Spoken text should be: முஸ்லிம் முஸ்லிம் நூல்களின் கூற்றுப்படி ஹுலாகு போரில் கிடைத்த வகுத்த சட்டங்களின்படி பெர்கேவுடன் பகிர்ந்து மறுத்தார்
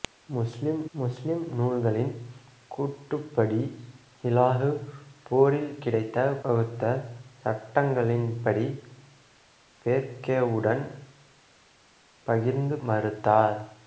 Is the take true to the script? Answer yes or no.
yes